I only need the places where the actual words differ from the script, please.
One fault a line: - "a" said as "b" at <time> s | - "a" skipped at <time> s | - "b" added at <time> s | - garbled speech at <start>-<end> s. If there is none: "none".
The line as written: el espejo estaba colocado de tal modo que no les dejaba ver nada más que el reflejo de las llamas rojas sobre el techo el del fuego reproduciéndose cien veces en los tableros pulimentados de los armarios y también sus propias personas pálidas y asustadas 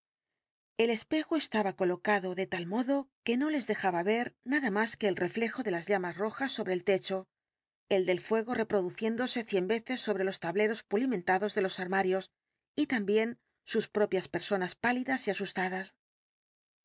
- "en" said as "sobre" at 10.0 s